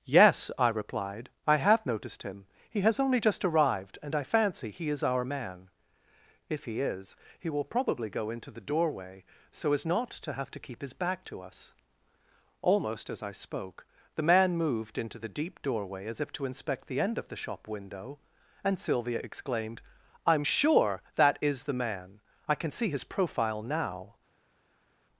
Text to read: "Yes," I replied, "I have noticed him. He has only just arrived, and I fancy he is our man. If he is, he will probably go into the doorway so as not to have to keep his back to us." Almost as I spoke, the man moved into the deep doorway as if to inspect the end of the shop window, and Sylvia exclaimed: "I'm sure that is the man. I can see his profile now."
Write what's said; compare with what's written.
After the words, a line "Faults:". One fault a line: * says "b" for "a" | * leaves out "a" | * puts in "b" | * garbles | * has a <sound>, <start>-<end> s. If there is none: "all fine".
"Yes," I replied, "I have noticed him. He has only just arrived, and I fancy he is our man. If he is, he will probably go into the doorway so as not to have to keep his back to us." Almost as I spoke, the man moved into the deep doorway as if to inspect the end of the shop window, and Sylvia exclaimed: "I'm sure that is the man. I can see his profile now."
Faults:
all fine